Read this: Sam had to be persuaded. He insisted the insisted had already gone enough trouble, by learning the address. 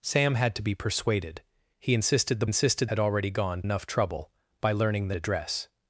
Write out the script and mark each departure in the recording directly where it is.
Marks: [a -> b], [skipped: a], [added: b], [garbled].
Sam had to be persuaded. He insisted the insisted had already gone enough trouble, by learning the address.